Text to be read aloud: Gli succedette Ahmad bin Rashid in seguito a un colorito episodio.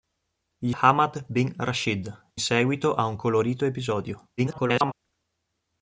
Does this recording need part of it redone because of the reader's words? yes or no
yes